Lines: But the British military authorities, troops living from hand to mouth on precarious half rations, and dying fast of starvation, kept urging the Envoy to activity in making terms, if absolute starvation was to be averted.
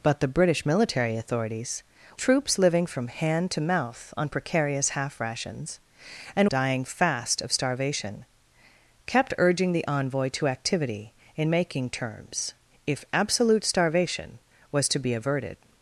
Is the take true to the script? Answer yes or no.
yes